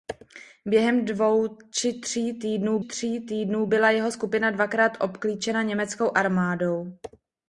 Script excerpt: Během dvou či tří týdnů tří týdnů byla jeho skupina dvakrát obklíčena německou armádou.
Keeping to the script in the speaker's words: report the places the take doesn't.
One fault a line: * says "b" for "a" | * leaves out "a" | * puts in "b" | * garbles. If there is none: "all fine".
all fine